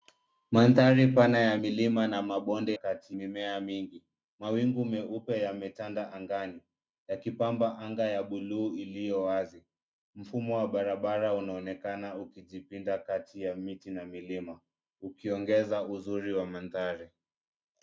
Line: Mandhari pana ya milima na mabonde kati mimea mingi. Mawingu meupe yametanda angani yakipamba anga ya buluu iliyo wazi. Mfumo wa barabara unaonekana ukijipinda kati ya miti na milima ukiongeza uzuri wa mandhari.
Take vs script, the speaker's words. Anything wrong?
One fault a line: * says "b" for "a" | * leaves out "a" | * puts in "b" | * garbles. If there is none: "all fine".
all fine